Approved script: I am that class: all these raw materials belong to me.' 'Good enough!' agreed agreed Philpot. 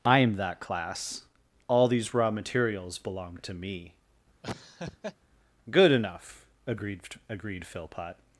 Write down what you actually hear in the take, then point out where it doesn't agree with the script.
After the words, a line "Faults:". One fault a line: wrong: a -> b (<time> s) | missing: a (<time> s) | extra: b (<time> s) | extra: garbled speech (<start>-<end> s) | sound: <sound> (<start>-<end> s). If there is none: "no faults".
I am that class: all these raw materials belong to me.' 'Good enough!' agreed agreed Philpot.
Faults:
sound: laugh (4.4-5.2 s)